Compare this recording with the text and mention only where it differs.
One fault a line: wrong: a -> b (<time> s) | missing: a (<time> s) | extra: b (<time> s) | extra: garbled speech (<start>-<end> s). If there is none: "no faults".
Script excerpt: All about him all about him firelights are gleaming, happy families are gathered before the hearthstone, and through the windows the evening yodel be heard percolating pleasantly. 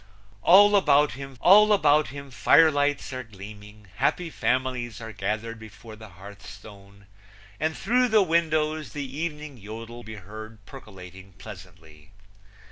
no faults